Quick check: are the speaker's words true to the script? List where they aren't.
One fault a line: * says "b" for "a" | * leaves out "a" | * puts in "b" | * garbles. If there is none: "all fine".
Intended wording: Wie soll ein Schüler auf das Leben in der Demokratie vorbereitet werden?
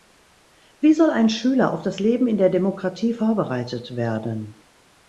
all fine